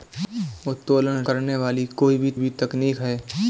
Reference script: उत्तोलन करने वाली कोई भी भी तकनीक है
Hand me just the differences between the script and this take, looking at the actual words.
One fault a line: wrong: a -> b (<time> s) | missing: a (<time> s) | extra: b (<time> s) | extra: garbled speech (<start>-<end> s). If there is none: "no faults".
no faults